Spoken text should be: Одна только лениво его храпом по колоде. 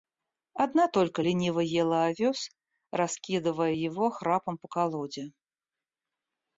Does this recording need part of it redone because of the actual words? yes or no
yes